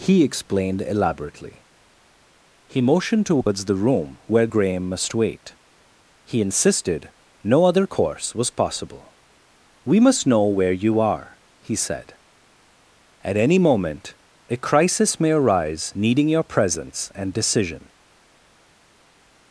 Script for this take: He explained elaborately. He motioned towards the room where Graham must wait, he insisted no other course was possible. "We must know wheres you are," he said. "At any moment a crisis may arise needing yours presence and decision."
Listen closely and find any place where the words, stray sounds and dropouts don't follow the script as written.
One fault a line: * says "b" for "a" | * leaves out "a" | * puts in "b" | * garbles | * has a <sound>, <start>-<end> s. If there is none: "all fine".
* says "where" for "wheres"
* says "your" for "yours"